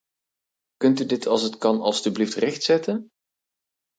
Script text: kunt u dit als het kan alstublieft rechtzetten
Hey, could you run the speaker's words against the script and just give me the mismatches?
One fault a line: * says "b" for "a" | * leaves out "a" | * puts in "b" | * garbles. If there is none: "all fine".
all fine